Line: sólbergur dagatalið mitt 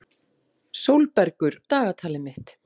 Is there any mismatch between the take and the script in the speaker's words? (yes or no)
no